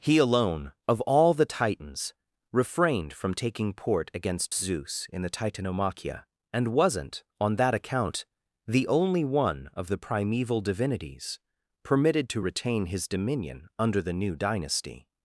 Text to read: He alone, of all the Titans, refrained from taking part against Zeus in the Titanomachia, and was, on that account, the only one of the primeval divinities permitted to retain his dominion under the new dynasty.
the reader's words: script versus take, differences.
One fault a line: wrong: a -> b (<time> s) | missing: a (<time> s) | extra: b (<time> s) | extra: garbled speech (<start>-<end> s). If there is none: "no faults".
wrong: part -> port (3.7 s)
wrong: was -> wasn't (6.7 s)